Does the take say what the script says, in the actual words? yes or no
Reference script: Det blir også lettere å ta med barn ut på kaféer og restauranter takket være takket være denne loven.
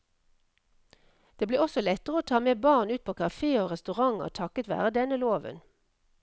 no